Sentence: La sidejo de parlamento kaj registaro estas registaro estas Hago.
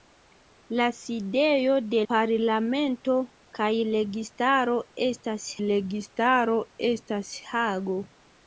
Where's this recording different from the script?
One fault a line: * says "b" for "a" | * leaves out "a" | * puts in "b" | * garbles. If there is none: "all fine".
all fine